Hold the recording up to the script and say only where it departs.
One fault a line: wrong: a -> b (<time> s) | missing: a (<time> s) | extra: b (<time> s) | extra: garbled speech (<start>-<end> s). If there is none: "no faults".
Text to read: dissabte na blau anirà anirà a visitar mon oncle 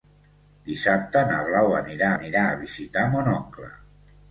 no faults